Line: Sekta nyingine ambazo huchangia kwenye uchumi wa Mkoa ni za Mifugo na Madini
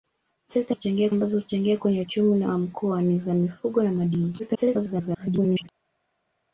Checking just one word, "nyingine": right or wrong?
wrong